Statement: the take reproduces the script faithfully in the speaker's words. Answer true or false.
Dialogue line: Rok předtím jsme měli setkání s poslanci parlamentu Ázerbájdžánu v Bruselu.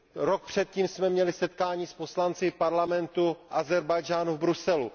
true